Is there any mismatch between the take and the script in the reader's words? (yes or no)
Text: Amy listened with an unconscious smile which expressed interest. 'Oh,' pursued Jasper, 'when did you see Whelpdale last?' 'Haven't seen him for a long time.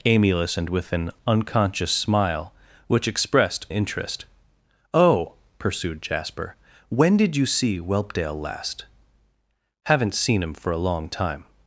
no